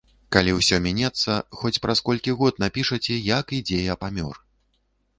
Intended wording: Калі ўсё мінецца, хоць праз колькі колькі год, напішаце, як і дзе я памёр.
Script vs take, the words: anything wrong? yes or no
yes